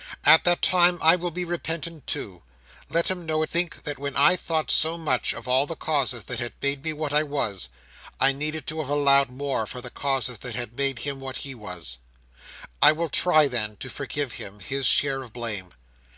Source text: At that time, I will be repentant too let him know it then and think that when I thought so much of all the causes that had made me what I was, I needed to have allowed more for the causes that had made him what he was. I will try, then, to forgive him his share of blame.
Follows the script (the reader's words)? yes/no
no